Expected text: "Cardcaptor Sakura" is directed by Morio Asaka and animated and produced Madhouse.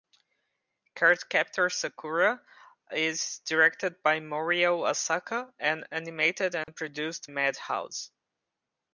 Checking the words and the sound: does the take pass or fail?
fail